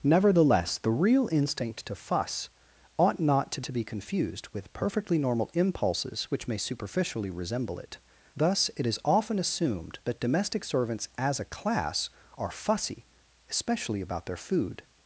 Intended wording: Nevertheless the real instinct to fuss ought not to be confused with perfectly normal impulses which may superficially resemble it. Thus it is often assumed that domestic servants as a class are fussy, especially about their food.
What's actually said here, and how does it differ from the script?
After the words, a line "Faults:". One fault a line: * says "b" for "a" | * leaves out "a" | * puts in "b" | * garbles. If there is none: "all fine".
Nevertheless the real instinct to fuss ought not to to be confused with perfectly normal impulses which may superficially resemble it. Thus it is often assumed that domestic servants as a class are fussy, especially about their food.
Faults:
* puts in "to"